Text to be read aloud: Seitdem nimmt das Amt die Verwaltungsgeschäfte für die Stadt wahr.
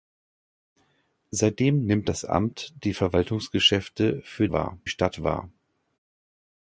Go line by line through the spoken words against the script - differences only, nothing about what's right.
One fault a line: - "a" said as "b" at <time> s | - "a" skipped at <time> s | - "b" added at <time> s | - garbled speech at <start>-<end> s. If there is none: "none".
- "die" said as "wahr" at 4.5 s